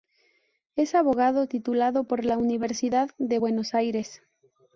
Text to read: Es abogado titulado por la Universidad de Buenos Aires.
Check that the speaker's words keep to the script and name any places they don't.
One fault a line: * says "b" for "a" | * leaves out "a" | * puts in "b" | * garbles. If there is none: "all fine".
all fine